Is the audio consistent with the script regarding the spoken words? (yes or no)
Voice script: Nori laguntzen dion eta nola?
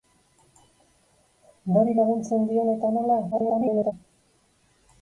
no